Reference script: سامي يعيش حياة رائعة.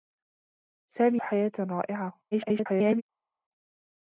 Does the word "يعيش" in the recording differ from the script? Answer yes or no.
yes